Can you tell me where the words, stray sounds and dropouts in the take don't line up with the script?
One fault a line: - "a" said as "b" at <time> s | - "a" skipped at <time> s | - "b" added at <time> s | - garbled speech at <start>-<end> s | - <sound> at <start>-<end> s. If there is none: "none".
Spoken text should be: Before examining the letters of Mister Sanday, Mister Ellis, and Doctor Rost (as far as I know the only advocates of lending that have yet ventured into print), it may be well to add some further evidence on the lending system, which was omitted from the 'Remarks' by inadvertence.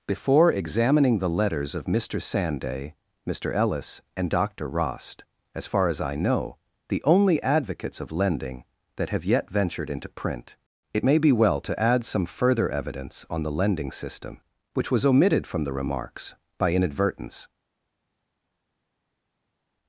none